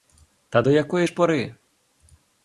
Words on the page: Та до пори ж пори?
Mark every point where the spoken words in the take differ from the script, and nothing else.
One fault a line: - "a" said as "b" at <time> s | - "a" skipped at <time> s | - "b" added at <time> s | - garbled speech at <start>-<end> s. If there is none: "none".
- "пори" said as "якої" at 0.7 s